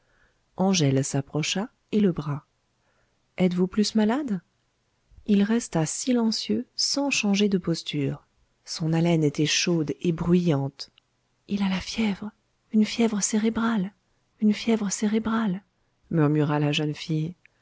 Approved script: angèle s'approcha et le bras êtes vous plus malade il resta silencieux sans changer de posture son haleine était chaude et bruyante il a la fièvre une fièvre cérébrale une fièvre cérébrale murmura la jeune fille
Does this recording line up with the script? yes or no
yes